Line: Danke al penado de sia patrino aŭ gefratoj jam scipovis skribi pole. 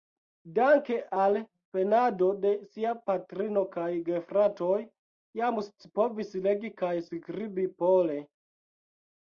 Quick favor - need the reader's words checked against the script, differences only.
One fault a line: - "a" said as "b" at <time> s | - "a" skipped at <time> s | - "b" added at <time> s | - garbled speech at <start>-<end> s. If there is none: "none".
- "aŭ" said as "kaj" at 3.8 s
- "legi kaj" added at 6.5 s